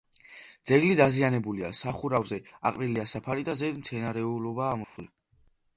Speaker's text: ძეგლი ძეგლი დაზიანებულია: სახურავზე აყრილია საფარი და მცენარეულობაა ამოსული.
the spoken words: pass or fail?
fail